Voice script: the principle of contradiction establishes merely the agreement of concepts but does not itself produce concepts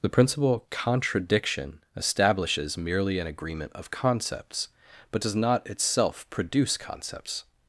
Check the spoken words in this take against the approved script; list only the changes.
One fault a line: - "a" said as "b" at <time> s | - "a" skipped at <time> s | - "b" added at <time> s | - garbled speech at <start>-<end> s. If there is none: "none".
- "of" skipped at 0.7 s
- "the" said as "an" at 3.2 s